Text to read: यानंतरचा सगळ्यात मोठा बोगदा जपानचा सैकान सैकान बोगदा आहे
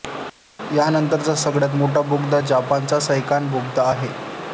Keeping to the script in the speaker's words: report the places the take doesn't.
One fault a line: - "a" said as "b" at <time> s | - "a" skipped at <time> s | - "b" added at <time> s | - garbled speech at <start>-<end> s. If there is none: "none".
- "सैकान" skipped at 3.5 s